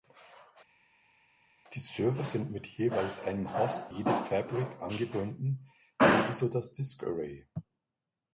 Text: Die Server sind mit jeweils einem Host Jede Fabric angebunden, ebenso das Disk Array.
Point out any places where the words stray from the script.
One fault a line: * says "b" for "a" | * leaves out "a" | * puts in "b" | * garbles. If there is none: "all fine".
all fine